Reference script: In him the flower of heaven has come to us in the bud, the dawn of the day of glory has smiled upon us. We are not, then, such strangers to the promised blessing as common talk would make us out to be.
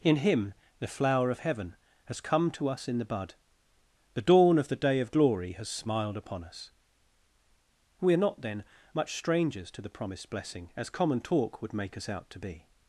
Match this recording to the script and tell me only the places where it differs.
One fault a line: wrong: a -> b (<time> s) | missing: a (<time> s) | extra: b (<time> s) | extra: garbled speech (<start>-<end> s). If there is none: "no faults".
wrong: such -> much (8.9 s)